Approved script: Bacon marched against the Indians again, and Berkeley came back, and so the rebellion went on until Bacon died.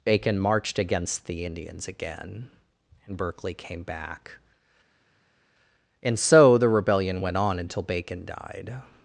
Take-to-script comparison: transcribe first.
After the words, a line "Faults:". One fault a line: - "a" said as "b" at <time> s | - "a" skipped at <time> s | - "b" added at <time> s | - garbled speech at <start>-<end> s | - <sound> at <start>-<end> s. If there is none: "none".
Bacon marched against the Indians again, and Berkeley came back, and so the rebellion went on until Bacon died.
Faults:
none